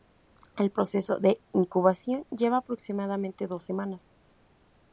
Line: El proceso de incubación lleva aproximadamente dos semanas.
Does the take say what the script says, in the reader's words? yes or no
yes